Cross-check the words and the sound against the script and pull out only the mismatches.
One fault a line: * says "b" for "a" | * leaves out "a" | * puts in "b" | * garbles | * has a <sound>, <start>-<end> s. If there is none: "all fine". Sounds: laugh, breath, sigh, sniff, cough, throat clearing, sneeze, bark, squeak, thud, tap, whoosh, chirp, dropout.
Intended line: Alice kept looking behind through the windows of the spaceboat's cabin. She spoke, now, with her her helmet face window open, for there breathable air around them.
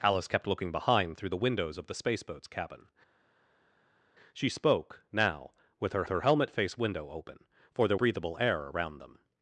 all fine